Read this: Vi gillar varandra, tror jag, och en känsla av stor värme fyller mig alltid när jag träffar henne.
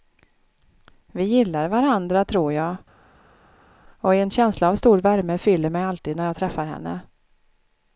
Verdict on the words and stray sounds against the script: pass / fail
pass